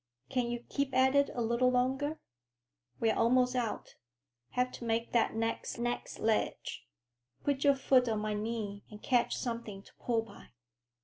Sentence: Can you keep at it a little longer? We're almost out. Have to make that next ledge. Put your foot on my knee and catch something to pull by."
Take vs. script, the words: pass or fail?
fail